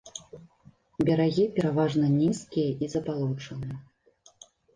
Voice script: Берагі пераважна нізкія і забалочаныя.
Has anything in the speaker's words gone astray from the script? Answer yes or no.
no